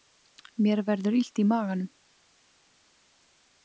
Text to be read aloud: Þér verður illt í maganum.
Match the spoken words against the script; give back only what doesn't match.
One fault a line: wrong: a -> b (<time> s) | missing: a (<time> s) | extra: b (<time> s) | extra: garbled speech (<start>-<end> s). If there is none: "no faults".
wrong: Þér -> Mér (0.7 s)